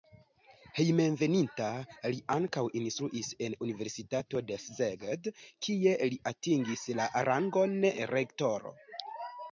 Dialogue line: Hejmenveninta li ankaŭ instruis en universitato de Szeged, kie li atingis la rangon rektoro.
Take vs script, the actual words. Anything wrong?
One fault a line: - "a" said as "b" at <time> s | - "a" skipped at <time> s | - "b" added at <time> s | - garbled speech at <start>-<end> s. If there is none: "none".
none